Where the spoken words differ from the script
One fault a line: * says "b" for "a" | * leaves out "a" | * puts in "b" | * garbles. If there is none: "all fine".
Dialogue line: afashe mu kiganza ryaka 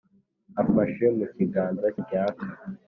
all fine